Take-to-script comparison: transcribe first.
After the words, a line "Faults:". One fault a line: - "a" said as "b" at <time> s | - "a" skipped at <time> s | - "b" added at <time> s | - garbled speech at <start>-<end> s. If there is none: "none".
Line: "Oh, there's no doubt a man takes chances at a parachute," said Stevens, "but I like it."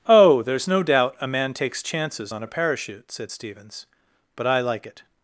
"Oh, there's no doubt a man takes chances on a parachute," said Stevens, "but I like it."
Faults:
- "at" said as "on" at 2.3 s